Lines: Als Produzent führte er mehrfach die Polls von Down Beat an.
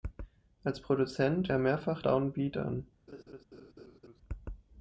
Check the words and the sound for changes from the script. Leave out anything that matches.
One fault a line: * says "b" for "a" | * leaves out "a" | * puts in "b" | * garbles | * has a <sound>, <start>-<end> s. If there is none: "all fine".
* leaves out "führte"
* leaves out "die Polls von"
* has a laugh, 3.1-4.2 s